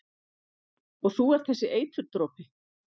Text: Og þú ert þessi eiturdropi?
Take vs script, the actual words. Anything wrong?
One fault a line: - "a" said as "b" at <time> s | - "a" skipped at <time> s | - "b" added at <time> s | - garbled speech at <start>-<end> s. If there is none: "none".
none